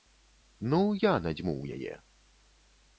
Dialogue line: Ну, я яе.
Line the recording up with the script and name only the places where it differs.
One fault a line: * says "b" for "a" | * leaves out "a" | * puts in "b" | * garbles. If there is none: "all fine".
* puts in "надзьмуў"